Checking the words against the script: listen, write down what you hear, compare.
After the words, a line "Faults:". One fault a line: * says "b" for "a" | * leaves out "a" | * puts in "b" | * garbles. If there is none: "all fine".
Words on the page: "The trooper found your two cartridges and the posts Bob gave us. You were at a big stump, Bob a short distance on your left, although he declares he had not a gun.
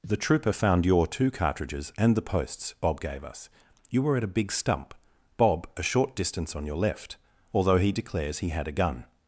"The trooper found your two cartridges and the posts Bob gave us. You were at a big stump, Bob a short distance on your left, although he declares he had a gun.
Faults:
* leaves out "not"